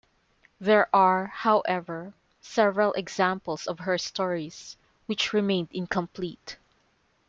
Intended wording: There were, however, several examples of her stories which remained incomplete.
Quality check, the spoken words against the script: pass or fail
fail